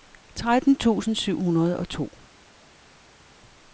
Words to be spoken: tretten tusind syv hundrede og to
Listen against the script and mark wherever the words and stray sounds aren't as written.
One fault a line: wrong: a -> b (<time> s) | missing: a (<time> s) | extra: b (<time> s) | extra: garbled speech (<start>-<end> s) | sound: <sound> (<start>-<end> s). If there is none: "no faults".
no faults